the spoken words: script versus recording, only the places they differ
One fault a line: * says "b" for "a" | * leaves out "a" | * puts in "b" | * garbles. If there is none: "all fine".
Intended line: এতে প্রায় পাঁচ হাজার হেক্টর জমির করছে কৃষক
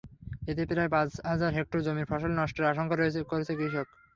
* puts in "ফসল নষ্টের আশঙ্কা"